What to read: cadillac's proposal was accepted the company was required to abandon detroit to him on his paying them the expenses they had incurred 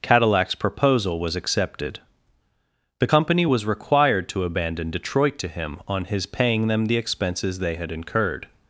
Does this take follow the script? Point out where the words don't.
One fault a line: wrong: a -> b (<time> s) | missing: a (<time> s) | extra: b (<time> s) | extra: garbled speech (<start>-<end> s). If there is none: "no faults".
no faults